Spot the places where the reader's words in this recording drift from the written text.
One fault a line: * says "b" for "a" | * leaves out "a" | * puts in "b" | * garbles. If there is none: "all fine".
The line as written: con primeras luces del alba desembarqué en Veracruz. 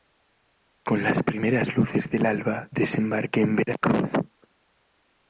* puts in "las"